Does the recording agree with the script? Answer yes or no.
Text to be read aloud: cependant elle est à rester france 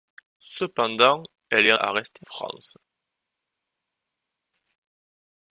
yes